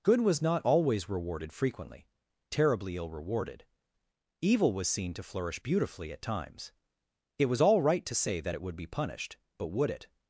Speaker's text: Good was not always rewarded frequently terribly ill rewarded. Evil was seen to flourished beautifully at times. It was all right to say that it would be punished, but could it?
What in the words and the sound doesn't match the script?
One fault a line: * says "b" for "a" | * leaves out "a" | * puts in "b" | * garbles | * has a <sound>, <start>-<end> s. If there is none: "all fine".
* says "flourish" for "flourished"
* says "would" for "could"